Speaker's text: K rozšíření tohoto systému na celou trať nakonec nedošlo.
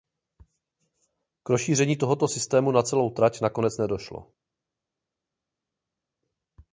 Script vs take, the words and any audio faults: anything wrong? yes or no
no